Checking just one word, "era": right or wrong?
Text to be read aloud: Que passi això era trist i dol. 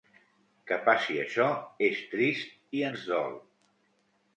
wrong